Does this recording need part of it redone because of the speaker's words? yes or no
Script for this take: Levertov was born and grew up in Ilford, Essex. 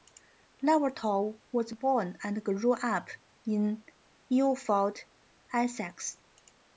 no